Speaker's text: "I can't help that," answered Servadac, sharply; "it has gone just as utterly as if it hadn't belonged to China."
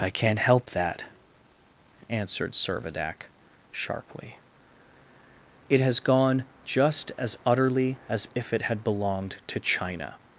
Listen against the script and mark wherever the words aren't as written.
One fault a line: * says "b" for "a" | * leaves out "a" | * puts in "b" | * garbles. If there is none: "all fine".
* says "had" for "hadn't"